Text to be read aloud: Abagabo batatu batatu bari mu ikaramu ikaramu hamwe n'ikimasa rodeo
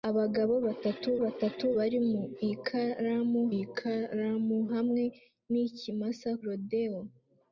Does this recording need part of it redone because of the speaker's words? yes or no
no